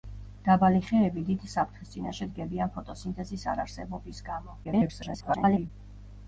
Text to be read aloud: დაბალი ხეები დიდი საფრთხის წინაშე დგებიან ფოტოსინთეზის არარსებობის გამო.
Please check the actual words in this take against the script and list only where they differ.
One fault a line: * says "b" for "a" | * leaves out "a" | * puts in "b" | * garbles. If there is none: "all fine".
* garbles